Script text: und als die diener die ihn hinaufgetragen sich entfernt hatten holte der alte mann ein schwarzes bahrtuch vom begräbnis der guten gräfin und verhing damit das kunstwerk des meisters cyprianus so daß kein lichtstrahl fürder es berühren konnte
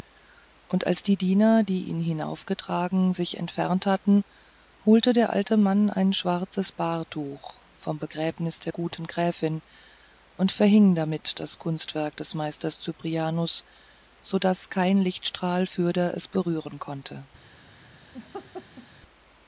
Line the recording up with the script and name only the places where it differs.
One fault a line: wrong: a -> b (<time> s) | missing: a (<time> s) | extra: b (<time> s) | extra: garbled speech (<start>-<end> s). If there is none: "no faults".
no faults